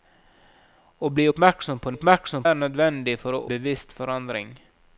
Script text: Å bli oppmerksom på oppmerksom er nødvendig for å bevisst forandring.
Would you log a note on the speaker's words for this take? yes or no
no